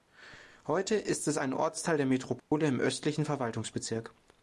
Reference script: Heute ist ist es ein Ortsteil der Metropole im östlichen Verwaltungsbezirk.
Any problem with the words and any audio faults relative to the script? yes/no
yes